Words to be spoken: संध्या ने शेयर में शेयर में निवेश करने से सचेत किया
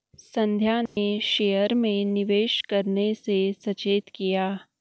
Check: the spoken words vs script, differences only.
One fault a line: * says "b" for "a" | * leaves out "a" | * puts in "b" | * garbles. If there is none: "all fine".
* leaves out "शेयर में"